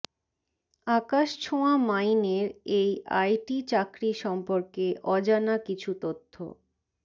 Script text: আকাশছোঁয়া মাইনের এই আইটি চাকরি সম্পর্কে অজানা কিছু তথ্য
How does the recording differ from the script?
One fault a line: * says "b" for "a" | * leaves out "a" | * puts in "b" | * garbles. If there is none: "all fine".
all fine